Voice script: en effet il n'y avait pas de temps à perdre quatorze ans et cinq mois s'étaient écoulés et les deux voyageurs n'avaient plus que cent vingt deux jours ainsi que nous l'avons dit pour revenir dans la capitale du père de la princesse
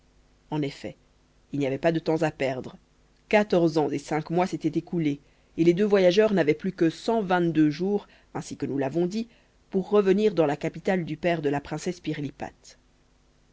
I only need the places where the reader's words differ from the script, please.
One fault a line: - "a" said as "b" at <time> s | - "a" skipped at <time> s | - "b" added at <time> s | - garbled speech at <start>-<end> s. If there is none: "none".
none